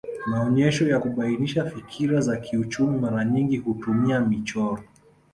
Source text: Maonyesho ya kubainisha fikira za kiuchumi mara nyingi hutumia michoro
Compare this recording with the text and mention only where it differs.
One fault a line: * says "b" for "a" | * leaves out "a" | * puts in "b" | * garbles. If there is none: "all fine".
all fine